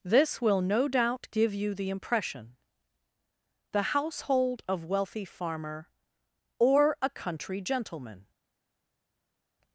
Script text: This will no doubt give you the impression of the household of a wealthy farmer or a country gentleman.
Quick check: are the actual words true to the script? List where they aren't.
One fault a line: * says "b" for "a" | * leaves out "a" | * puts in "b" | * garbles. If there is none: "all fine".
* leaves out "of"
* leaves out "a"